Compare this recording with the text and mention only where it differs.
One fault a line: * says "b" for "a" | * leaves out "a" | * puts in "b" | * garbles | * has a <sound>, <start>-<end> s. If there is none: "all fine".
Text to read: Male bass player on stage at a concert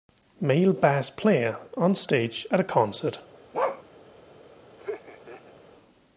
* has a bark, 3.5-3.8 s
* has a laugh, 4.8-5.5 s